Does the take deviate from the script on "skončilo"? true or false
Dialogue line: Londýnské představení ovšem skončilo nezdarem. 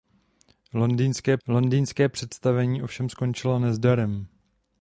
false